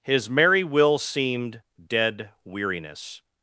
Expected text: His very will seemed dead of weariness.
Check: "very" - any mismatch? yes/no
yes